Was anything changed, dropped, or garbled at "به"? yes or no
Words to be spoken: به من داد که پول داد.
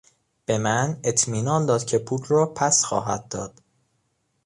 no